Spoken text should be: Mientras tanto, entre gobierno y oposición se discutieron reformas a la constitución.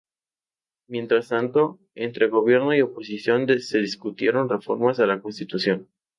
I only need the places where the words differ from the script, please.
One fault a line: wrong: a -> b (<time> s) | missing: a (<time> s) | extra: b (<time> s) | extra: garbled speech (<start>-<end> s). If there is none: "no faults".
no faults